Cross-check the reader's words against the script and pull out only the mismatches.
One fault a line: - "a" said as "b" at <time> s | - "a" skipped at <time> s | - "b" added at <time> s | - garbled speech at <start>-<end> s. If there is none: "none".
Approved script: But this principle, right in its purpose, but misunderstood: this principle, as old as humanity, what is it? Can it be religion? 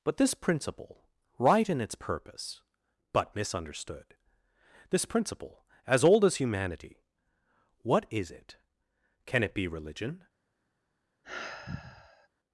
none